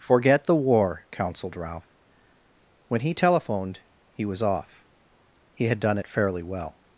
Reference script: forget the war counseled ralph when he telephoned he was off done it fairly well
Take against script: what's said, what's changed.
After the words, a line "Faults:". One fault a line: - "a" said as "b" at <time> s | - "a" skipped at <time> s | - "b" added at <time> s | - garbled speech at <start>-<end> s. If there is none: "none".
forget the war counseled ralph when he telephoned he was off he had done it fairly well
Faults:
- "he had" added at 5.5 s